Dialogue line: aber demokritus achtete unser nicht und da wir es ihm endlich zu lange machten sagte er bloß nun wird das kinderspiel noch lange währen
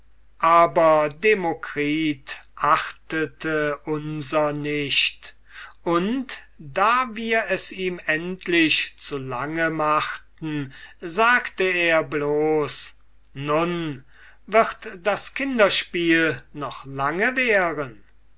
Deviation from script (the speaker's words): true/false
false